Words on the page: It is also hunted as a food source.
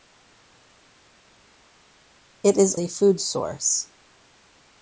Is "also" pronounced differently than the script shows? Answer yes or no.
yes